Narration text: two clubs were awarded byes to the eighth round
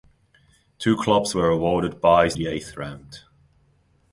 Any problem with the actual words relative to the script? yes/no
yes